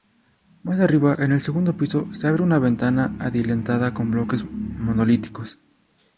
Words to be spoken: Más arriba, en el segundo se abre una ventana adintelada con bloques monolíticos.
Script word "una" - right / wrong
right